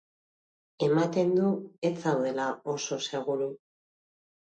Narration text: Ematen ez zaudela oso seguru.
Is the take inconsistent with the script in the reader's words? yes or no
yes